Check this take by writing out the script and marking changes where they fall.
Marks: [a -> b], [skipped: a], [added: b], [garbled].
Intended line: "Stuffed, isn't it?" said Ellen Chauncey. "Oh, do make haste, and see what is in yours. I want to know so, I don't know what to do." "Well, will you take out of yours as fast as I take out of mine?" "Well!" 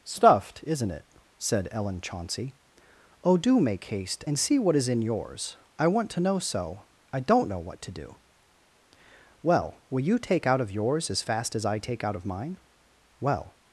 "Stuffed, isn't it?" said Ellen Chauncey. "Oh, do make haste, and see what is in yours. I want to know so, I don't know what to do." "Well, will you take out of yours as fast as I take out of mine?" "Well!"